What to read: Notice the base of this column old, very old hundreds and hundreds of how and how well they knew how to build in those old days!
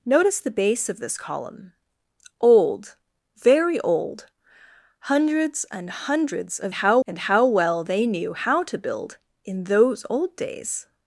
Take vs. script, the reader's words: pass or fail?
pass